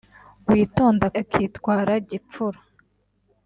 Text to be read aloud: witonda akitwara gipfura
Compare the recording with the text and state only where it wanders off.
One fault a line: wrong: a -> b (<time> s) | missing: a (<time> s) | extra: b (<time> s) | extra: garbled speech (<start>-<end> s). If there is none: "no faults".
no faults